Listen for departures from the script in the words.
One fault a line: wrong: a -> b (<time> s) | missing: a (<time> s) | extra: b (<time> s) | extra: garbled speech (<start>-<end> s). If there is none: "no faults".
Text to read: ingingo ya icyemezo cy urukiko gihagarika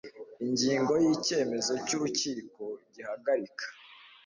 no faults